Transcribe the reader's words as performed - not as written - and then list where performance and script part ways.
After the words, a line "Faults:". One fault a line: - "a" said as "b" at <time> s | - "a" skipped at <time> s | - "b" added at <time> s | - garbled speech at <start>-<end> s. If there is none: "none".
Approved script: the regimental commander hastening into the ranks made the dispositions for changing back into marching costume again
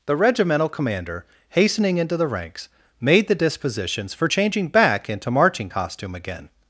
the regimental commander hastening into the ranks made the dispositions for changing back into marching costume again
Faults:
none